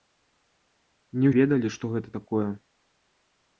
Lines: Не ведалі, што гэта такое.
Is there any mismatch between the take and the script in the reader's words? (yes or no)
no